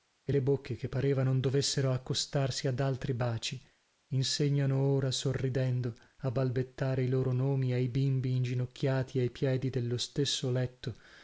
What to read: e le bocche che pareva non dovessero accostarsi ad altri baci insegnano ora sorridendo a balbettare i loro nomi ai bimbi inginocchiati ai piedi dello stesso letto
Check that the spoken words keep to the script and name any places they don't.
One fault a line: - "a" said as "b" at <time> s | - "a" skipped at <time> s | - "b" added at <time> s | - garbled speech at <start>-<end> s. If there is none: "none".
none